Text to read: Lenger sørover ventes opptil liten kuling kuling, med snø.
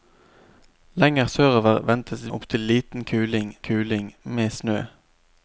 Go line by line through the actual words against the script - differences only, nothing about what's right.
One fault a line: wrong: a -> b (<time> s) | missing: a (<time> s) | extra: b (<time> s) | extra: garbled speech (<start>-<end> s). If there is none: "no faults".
no faults